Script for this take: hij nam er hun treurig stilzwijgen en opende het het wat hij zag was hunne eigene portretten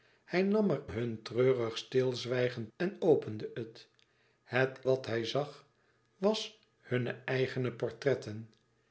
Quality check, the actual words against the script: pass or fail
pass